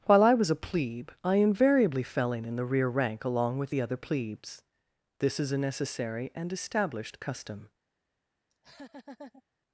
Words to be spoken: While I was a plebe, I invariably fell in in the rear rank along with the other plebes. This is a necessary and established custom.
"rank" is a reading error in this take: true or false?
false